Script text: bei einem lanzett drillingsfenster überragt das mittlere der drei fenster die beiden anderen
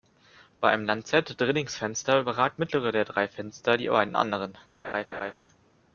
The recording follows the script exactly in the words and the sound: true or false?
false